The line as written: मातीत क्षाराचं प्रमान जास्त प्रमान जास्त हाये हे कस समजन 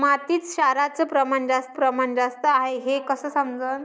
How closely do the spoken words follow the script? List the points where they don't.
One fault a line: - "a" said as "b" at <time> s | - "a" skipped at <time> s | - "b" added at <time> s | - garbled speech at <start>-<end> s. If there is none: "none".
none